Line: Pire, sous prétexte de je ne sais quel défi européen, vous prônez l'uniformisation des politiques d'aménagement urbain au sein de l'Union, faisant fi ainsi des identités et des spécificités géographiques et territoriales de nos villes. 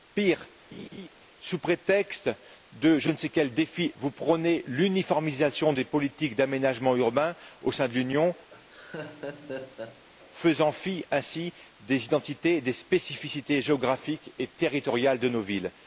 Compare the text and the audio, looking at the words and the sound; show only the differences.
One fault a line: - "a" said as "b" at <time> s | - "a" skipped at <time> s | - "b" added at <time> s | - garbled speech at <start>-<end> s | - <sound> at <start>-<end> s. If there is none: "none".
- laugh at 0.7-1.1 s
- "européen" skipped at 3.9 s
- laugh at 8.5-10.0 s